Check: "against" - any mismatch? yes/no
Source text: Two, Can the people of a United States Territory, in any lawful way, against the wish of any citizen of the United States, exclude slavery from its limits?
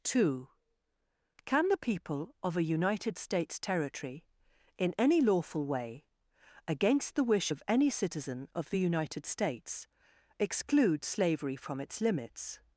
no